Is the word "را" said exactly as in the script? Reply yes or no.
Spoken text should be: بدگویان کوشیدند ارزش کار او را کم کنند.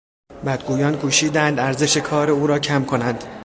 yes